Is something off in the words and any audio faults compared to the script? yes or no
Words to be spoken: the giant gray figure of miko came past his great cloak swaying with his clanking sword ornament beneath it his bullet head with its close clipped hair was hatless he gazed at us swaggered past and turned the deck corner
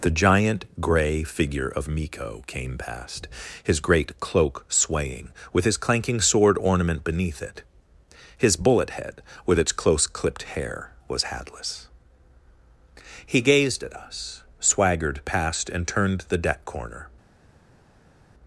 no